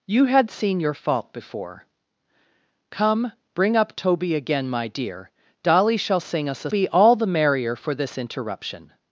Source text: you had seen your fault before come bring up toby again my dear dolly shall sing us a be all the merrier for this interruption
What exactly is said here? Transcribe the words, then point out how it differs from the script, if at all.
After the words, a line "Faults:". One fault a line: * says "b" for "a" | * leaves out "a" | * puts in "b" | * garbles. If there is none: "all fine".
you had seen your fault before come bring up toby again my dear dolly shall sing us a be all the merrier for this interruption
Faults:
all fine